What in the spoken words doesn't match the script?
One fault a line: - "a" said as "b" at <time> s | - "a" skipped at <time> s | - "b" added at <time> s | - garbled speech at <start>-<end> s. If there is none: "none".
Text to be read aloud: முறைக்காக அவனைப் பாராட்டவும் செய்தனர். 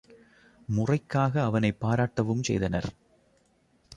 none